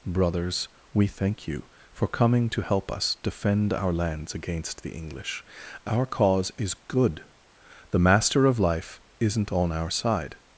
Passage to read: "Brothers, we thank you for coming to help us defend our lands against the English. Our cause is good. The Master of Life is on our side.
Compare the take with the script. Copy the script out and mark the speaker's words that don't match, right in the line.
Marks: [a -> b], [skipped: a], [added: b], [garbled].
"Brothers, we thank you for coming to help us defend our lands against the English. Our cause is good. The Master of Life [is -> isn't] on our side.